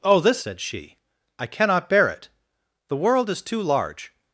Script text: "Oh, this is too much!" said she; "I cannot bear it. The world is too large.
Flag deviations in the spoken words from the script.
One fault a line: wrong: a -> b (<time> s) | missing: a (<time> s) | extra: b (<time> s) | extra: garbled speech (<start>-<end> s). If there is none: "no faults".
missing: is too much (0.4 s)